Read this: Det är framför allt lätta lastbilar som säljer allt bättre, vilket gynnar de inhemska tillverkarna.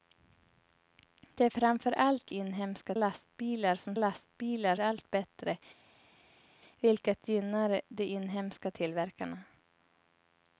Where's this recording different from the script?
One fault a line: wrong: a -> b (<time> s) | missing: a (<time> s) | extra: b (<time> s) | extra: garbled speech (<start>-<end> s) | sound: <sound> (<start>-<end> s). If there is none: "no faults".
wrong: lätta -> inhemska (2.3 s)
wrong: säljer -> lastbilar (3.9 s)